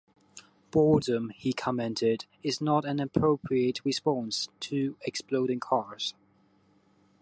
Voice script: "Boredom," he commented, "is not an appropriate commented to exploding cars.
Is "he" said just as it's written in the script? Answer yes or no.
yes